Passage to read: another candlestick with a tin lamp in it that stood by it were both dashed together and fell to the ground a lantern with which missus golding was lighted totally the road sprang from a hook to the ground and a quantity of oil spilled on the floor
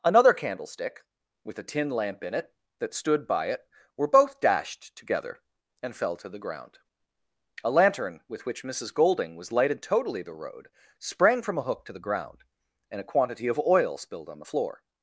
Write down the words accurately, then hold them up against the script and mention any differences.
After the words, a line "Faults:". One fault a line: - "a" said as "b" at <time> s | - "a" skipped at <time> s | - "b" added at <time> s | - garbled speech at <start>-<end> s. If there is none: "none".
another candlestick with a tin lamp in it that stood by it were both dashed together and fell to the ground a lantern with which missus golding was lighted totally the road sprang from a hook to the ground and a quantity of oil spilled on the floor
Faults:
none